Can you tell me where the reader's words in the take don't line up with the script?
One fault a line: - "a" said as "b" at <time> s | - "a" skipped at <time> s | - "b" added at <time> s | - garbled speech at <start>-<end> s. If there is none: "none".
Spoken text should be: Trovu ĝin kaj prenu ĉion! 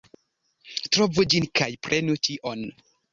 none